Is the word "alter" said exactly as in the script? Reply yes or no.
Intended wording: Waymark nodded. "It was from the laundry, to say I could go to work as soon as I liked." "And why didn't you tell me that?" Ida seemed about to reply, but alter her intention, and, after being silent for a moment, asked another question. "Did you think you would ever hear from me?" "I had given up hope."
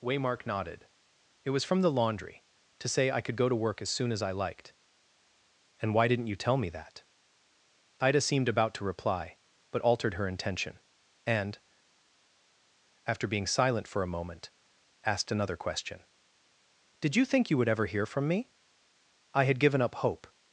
no